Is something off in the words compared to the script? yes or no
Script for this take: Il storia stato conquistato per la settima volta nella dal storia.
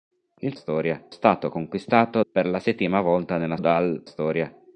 no